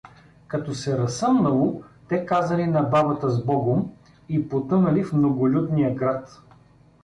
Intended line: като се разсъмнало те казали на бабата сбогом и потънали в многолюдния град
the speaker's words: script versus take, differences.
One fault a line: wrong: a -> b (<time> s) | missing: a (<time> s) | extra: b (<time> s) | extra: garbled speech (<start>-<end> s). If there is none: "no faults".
no faults